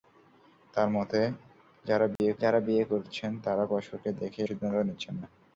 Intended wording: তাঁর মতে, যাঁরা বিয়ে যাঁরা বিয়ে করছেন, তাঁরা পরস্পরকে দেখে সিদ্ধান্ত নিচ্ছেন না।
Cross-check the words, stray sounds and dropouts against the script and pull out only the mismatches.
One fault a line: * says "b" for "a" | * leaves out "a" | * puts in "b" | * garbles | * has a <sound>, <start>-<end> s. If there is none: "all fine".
* has a dropout, 2.2-2.2 s